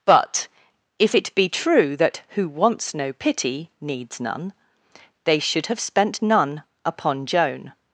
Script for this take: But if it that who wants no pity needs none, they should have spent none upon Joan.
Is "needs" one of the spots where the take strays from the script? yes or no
no